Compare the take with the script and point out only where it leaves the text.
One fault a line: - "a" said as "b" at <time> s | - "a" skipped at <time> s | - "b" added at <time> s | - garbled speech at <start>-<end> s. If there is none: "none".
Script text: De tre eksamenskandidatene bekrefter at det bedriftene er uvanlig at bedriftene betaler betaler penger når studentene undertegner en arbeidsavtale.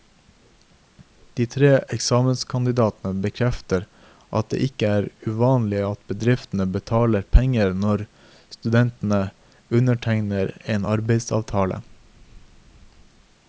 - "bedriftene" said as "ikke" at 4.7 s
- "betaler" skipped at 7.3 s